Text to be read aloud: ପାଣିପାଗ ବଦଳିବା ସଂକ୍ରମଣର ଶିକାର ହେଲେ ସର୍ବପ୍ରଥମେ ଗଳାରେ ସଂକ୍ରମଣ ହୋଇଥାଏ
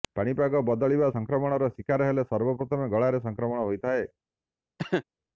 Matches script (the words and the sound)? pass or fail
fail